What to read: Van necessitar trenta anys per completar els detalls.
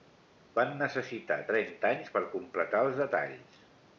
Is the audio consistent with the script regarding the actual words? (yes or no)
yes